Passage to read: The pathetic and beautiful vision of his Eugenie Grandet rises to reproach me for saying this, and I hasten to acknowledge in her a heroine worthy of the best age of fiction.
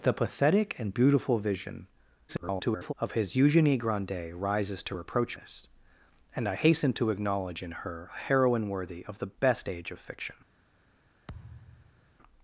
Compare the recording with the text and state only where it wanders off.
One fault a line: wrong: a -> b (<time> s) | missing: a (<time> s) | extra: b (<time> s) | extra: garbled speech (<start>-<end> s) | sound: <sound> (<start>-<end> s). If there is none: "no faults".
extra: garbled speech (2.3-2.9 s)
missing: me for saying (5.4 s)
sound: thud (11.3-12.1 s)